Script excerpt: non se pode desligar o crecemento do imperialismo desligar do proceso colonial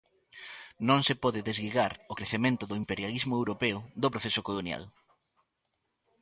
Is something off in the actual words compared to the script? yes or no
yes